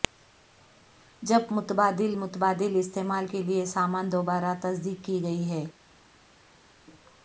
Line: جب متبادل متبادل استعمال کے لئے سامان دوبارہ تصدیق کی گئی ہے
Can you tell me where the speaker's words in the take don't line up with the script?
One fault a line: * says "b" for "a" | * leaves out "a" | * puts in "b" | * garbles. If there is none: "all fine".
all fine